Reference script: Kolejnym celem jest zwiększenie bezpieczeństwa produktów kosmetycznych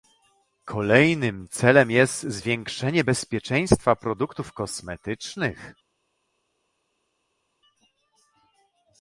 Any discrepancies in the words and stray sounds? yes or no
no